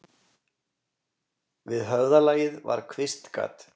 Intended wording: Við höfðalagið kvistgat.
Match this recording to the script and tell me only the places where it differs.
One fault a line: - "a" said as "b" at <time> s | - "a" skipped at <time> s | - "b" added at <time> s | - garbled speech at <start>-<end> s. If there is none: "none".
- "var" added at 2.7 s